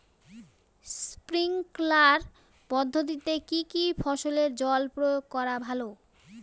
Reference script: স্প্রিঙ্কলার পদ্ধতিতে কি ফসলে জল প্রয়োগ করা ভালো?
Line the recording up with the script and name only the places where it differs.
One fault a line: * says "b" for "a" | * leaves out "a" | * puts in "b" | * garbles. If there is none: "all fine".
* puts in "কী"